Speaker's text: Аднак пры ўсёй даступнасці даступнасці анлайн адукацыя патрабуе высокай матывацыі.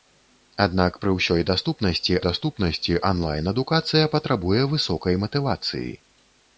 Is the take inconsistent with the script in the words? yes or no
no